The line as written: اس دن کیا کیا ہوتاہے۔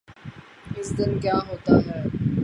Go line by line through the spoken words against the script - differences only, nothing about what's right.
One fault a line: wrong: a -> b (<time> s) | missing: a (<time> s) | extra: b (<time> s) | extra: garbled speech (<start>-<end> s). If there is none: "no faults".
missing: کیا (1.4 s)